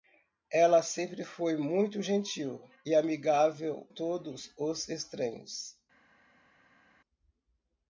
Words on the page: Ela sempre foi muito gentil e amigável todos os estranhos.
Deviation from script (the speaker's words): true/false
false